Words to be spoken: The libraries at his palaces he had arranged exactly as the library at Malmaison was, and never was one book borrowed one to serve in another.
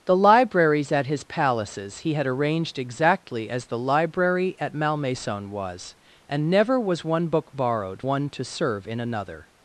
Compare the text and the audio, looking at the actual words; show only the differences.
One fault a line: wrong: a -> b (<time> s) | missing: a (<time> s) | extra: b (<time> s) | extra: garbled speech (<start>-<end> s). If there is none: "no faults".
no faults